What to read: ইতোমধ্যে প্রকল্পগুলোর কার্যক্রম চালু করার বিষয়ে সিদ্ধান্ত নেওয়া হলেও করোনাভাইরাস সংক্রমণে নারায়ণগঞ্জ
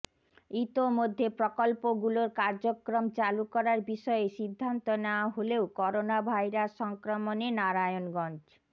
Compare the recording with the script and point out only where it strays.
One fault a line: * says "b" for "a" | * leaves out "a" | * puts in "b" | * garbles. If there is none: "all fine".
all fine